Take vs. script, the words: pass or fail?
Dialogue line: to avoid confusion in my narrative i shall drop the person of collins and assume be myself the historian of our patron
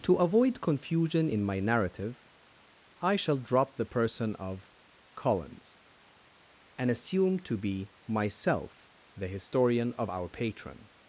fail